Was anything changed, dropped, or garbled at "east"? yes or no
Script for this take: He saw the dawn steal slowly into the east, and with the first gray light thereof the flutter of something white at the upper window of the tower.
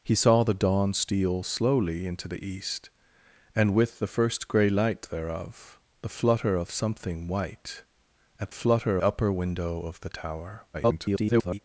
no